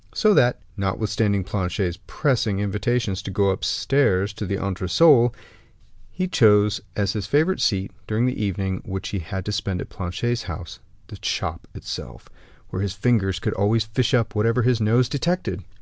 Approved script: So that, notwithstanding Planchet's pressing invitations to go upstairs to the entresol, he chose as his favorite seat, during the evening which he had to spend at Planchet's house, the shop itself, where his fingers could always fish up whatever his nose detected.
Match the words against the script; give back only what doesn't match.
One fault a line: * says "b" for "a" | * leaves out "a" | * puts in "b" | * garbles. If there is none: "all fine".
all fine